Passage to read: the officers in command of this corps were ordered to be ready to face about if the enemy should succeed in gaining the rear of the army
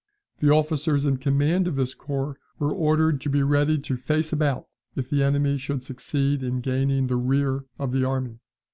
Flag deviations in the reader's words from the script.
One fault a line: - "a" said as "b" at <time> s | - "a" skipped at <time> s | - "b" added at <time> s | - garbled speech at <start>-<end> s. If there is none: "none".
none